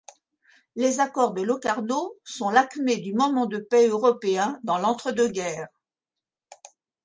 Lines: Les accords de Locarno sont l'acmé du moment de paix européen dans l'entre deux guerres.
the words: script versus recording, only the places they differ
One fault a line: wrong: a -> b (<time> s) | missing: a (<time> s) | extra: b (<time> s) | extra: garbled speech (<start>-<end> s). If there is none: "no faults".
no faults